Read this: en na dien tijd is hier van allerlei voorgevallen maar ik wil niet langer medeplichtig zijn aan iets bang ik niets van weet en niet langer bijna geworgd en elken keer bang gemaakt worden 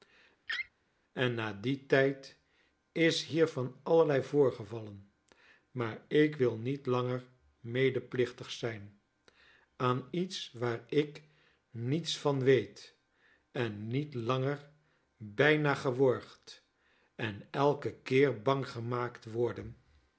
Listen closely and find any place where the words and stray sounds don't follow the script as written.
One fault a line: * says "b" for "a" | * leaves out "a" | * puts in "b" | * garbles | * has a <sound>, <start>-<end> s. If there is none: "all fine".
* has a laugh, 0.5-0.7 s
* says "waar" for "bang"